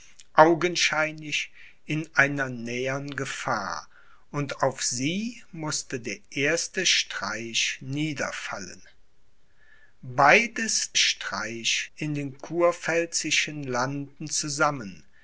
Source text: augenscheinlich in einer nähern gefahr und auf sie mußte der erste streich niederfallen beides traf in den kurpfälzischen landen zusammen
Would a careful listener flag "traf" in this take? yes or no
yes